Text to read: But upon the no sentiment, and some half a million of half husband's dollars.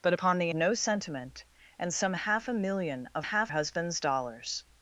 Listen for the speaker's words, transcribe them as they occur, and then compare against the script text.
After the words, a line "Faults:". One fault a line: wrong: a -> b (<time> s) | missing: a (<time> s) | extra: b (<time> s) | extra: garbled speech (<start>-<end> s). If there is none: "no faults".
But upon the no sentiment, and some half a million of half husband's dollars.
Faults:
no faults